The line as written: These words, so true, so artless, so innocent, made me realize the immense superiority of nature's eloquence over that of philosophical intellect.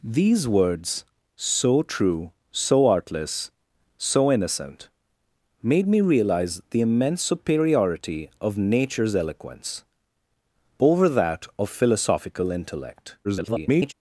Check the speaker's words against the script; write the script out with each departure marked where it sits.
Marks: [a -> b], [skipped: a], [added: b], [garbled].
These words, so true, so artless, so innocent, made me realize the immense superiority of nature's eloquence over that of philosophical intellect. [garbled]